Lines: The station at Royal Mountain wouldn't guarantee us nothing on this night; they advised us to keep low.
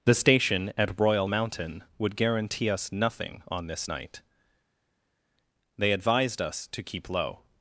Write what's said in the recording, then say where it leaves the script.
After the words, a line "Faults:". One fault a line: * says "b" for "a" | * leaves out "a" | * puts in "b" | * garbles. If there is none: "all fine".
The station at Royal Mountain would guarantee us nothing on this night; they advised us to keep low.
Faults:
* says "would" for "wouldn't"